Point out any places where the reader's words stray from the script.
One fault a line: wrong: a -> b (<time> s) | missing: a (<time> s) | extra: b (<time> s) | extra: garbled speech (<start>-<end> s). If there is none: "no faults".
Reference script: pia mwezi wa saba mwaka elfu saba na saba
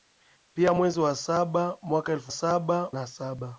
no faults